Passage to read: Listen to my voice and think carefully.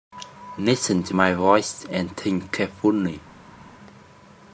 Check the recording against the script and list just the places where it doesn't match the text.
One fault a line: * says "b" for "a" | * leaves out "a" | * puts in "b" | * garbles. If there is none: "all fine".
all fine